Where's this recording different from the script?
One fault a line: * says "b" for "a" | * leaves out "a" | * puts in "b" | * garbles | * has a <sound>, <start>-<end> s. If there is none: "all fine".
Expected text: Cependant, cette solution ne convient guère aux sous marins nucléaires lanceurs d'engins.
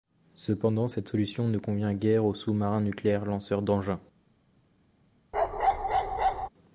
* has a bark, 5.3-6.5 s